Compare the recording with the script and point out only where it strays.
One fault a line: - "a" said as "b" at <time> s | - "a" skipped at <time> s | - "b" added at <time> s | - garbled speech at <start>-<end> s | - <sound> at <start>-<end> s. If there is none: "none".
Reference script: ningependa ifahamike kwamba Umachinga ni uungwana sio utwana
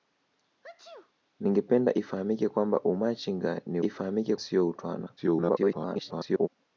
- sneeze at 0.6-1.1 s
- "uungwana" said as "ifahamike" at 3.8 s
- garbled speech at 5.2-6.5 s